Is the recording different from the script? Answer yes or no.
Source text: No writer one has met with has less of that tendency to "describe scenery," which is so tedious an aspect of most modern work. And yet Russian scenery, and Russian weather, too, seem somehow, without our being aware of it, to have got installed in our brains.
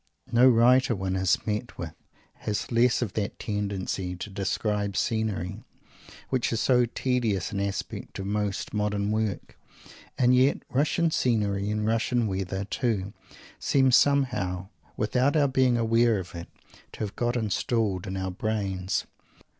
no